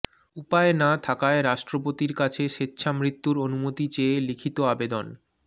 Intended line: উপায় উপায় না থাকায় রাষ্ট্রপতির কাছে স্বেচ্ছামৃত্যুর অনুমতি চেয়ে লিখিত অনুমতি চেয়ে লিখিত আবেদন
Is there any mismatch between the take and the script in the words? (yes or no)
yes